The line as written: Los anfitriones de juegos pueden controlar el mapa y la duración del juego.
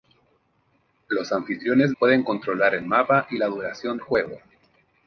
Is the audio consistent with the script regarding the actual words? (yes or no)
no